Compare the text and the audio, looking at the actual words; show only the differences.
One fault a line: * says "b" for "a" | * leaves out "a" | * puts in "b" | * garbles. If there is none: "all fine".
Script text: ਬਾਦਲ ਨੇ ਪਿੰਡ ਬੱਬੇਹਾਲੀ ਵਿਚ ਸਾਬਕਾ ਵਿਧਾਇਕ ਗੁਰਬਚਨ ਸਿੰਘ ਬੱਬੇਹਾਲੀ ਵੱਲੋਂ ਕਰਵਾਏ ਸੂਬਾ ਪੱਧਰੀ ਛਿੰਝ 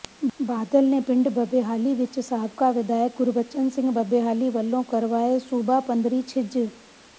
all fine